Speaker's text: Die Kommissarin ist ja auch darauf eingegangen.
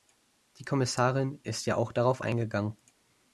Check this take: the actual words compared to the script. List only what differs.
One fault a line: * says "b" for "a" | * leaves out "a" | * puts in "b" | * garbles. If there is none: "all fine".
all fine